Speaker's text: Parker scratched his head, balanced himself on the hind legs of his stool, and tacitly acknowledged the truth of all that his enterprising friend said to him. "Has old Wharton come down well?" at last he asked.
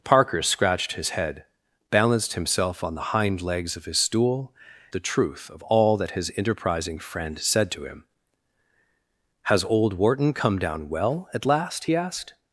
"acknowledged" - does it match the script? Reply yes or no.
no